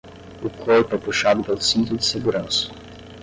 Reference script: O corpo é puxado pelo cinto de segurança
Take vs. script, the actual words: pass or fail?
pass